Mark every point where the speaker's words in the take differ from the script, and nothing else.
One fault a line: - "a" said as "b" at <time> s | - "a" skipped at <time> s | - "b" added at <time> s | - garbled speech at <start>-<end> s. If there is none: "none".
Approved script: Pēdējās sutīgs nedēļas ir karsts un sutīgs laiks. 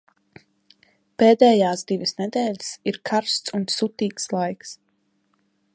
- "sutīgs" said as "divas" at 1.9 s